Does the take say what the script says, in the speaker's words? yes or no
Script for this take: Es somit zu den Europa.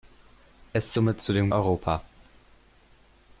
yes